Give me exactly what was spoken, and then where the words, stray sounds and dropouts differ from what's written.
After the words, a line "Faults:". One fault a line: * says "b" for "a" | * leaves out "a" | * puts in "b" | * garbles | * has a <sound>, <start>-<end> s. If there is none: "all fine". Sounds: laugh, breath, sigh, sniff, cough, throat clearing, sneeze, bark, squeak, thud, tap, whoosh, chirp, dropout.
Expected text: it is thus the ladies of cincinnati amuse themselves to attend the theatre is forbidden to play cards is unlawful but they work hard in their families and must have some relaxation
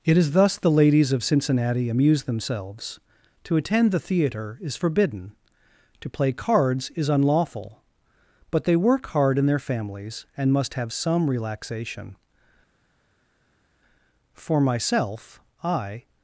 it is thus the ladies of cincinnati amuse themselves to attend the theatre is forbidden to play cards is unlawful but they work hard in their families and must have some relaxation for myself i
Faults:
* puts in "for myself i"